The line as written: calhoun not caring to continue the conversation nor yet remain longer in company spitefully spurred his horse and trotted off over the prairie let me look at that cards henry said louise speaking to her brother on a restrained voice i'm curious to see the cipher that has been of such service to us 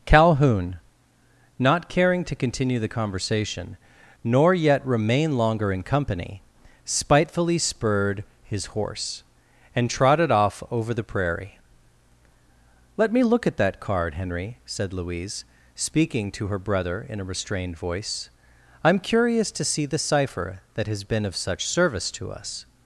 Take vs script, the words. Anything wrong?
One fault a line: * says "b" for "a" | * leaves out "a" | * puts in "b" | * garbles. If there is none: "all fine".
* says "card" for "cards"
* says "in" for "on"